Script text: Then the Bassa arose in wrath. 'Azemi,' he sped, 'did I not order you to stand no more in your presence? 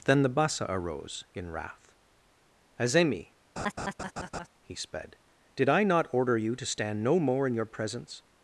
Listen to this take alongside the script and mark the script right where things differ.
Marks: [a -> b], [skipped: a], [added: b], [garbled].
Then the Bassa arose in wrath. 'Azemi,' he sped, 'did I not order you to stand no more in your presence?